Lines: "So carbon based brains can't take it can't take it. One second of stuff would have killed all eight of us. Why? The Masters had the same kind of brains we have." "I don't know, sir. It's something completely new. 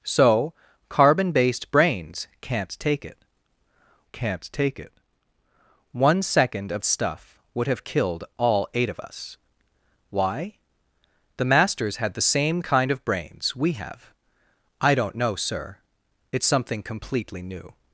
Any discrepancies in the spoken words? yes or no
no